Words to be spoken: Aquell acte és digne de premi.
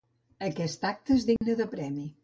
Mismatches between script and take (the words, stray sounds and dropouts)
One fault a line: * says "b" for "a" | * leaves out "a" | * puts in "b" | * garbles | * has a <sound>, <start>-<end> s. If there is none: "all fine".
* says "Aquest" for "Aquell"
* has a dropout, 1.4-1.4 s